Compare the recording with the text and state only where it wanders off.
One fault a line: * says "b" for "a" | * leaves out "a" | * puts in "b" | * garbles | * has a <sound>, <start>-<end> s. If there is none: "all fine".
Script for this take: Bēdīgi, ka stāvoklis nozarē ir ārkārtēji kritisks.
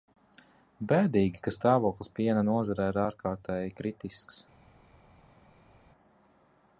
* puts in "piena"